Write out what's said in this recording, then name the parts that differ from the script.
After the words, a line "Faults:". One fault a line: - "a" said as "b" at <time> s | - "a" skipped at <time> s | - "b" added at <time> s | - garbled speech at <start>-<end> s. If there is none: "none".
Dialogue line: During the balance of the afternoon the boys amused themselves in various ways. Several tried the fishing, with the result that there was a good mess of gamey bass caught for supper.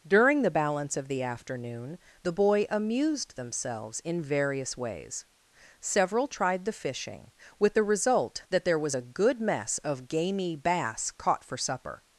During the balance of the afternoon the boy amused themselves in various ways. Several tried the fishing, with the result that there was a good mess of gamey bass caught for supper.
Faults:
- "boys" said as "boy" at 2.3 s